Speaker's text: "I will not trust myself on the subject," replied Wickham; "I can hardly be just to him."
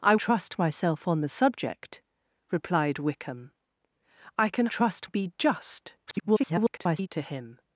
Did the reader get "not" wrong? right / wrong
wrong